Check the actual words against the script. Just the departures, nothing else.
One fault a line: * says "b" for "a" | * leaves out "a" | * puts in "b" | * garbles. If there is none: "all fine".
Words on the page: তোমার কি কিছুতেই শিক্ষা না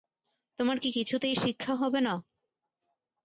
* puts in "হবে"